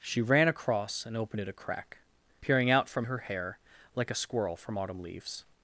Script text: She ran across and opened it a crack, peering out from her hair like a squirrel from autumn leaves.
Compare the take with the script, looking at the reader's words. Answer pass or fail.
pass